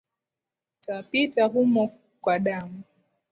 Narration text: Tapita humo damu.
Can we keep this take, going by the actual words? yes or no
no